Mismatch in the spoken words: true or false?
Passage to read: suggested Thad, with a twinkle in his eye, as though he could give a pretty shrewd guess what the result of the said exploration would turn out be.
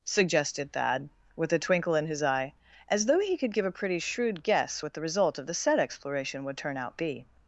false